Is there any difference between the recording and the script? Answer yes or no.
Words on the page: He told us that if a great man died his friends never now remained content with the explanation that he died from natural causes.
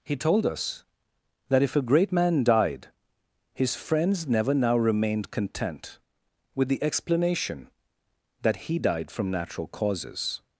no